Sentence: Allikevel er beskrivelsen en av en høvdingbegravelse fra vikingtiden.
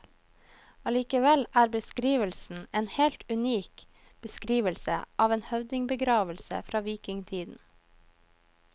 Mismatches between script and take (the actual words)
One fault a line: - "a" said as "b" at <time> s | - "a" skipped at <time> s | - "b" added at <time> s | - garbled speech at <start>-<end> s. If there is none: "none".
- "helt unik beskrivelse" added at 3.0 s